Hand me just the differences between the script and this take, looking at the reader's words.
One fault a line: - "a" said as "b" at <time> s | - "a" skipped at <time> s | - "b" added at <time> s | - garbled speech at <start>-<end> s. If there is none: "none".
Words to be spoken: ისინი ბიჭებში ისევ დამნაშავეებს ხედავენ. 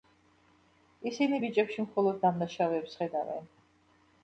- "ისევ" said as "მხოლოდ" at 1.9 s